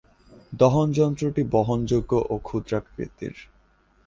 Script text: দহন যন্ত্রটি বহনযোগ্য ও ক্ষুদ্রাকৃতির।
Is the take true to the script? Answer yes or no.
yes